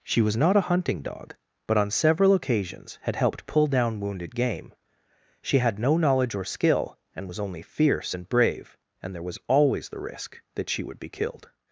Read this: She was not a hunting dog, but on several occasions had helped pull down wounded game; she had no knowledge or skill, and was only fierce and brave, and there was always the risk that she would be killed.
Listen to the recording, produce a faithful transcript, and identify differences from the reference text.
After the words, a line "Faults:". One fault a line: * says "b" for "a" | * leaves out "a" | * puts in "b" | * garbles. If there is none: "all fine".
She was not a hunting dog, but on several occasions had helped pull down wounded game; she had no knowledge or skill, and was only fierce and brave, and there was always the risk that she would be killed.
Faults:
all fine